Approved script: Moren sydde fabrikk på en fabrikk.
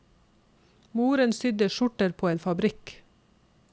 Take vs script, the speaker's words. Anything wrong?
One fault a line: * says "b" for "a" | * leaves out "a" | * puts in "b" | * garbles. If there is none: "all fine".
* says "skjorter" for "fabrikk"